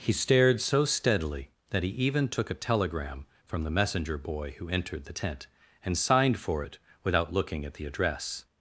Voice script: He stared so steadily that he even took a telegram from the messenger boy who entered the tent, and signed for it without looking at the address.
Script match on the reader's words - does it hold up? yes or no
yes